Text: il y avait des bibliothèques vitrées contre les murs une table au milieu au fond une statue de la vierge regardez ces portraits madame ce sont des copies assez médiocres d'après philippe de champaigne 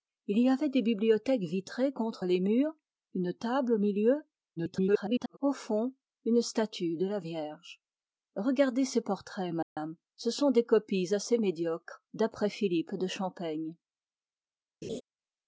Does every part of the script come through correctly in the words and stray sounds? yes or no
no